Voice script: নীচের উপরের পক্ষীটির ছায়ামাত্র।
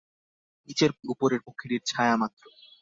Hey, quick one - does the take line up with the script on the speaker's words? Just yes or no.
yes